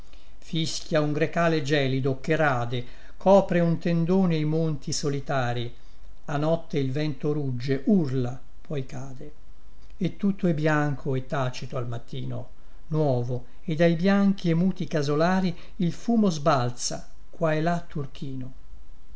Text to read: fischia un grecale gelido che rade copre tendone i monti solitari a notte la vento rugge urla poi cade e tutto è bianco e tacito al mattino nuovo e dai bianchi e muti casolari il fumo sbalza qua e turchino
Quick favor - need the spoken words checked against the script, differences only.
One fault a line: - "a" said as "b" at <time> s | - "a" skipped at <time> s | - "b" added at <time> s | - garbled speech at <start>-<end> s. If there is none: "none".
- "un" added at 3.6 s
- "la" said as "il" at 6.8 s
- "là" added at 17.6 s